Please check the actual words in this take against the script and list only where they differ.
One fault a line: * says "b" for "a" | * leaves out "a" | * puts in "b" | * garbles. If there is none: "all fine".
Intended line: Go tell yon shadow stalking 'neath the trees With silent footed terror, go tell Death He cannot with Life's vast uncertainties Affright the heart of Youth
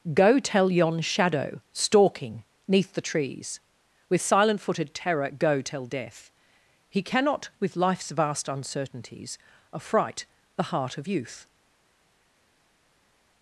all fine